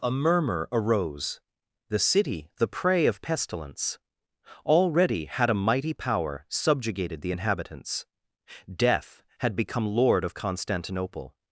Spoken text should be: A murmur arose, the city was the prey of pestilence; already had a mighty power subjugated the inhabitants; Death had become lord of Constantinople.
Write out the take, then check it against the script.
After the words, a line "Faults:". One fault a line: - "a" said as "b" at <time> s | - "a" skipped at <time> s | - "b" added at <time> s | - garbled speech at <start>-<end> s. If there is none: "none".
A murmur arose, the city the prey of pestilence; already had a mighty power subjugated the inhabitants; Death had become lord of Constantinople.
Faults:
- "was" skipped at 2.5 s